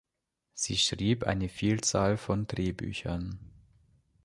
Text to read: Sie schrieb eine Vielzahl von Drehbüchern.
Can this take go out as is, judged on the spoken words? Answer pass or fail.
pass